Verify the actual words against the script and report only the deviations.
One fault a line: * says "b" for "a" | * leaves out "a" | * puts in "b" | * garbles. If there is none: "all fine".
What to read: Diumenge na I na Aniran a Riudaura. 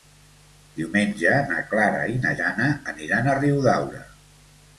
* puts in "Clara"
* puts in "Jana"